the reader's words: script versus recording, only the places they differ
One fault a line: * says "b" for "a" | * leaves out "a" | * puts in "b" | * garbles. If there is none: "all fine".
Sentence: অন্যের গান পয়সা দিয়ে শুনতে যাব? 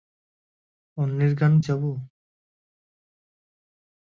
* leaves out "পয়সা দিয়ে শুনতে"